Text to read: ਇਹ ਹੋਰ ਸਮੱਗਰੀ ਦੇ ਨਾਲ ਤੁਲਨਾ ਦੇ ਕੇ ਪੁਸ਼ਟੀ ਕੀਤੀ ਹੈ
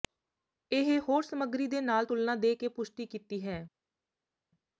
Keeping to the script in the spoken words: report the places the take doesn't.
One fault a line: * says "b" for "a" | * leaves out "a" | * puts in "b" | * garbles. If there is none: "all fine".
all fine